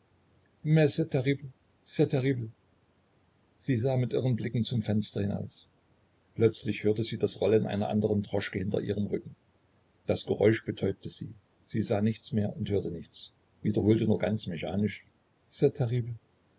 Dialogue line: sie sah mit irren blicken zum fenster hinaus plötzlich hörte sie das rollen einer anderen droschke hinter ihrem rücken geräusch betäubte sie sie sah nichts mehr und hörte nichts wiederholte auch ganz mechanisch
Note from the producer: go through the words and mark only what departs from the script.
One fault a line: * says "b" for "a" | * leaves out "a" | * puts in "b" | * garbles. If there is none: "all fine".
* puts in "das"
* says "nur" for "auch"